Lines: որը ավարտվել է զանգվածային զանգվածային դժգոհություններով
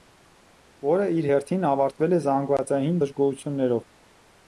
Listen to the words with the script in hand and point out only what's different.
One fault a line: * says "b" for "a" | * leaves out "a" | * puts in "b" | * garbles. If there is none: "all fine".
* puts in "իր հերթին"
* leaves out "զանգվածային"